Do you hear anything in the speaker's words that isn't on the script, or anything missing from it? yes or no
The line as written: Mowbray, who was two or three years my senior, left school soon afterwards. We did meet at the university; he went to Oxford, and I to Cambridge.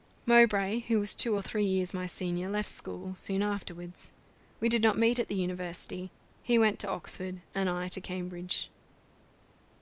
yes